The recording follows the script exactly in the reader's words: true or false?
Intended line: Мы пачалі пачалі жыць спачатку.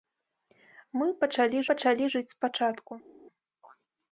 true